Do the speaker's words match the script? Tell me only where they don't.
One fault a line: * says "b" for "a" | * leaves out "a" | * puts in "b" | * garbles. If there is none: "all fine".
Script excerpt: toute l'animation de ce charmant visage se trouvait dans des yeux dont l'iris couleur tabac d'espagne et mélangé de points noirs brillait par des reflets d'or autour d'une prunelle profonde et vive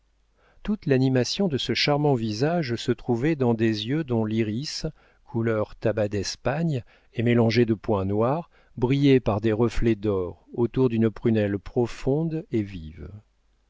all fine